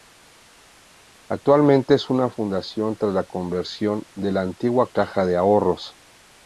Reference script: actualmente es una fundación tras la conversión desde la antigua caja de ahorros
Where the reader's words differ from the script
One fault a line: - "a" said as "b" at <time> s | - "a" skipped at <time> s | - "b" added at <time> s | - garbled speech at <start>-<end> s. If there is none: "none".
- "desde" said as "de" at 4.1 s